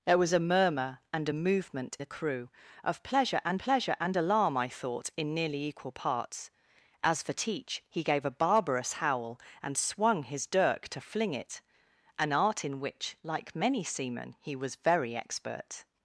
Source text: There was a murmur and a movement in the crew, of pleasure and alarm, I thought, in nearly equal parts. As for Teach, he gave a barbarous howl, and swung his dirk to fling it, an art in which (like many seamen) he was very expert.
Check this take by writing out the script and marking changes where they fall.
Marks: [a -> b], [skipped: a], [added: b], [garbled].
There was a murmur and a movement [skipped: in] the crew, of pleasure and [added: pleasure and] alarm, I thought, in nearly equal parts. As for Teach, he gave a barbarous howl, and swung his dirk to fling it, an art in which (like many seamen) he was very expert.